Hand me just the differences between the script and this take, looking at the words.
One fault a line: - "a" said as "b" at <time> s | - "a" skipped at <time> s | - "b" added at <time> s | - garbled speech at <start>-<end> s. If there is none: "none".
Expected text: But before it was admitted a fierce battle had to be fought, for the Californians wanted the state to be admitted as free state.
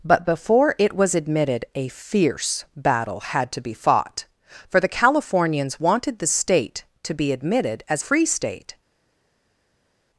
none